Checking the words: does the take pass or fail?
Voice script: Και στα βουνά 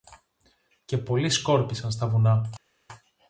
fail